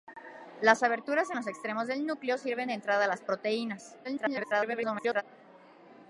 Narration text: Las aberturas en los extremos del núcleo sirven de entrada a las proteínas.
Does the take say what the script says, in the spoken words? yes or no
no